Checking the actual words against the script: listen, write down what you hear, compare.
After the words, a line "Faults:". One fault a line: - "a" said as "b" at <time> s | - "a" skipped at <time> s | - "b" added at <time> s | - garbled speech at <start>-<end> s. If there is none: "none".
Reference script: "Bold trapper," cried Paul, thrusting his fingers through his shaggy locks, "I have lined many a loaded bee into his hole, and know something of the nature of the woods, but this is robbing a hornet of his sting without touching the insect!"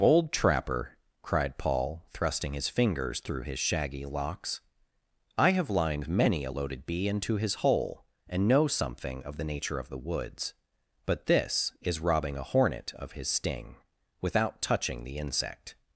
"Bold trapper," cried Paul, thrusting his fingers through his shaggy locks, "I have lined many a loaded bee into his hole, and know something of the nature of the woods, but this is robbing a hornet of his sting without touching the insect!"
Faults:
none